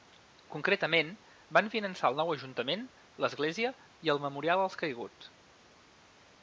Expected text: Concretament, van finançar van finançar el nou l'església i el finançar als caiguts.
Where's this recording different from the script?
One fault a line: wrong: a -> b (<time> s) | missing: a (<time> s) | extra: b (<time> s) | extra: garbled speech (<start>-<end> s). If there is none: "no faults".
missing: van finançar (2.1 s)
extra: ajuntament (2.3 s)
wrong: finançar -> memorial (4.3 s)